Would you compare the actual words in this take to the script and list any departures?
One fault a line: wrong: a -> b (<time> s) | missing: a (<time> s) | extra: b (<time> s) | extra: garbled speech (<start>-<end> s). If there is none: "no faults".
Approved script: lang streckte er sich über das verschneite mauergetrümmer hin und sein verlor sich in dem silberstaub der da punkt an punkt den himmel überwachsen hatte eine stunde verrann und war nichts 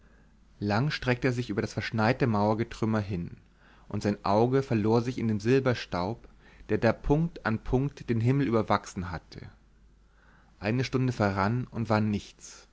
extra: auge (4.2 s)